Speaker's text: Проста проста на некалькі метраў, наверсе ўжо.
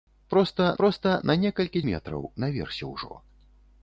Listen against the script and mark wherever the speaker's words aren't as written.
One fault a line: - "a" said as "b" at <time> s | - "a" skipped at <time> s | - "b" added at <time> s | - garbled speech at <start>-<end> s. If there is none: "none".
none